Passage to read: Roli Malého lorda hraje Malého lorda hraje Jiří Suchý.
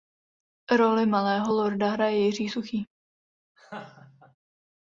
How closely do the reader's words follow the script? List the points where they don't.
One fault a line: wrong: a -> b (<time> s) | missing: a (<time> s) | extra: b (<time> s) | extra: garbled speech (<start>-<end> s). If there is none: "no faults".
missing: Malého lorda hraje (2.2 s)